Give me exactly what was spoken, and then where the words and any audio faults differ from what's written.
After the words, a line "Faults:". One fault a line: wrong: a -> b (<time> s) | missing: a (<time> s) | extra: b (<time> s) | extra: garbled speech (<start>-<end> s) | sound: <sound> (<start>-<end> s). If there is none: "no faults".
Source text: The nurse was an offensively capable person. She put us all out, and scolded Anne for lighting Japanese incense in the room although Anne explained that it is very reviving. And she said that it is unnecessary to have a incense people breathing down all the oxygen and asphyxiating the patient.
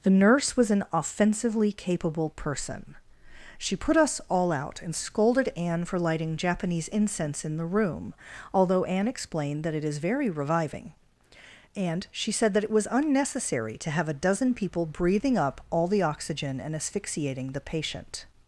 The nurse was an offensively capable person. She put us all out, and scolded Anne for lighting Japanese incense in the room although Anne explained that it is very reviving. And she said that it was unnecessary to have a dozen people breathing up all the oxygen and asphyxiating the patient.
Faults:
wrong: is -> was (12.7 s)
wrong: incense -> dozen (14.1 s)
wrong: down -> up (15.4 s)